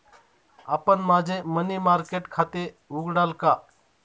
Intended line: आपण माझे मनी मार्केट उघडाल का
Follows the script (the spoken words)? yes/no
no